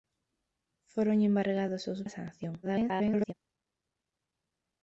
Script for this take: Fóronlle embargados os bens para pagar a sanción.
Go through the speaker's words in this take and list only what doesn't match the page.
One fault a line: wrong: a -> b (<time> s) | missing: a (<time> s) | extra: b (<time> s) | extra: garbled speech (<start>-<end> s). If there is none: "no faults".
missing: bens para pagar (2.0 s)
extra: garbled speech (2.6-3.3 s)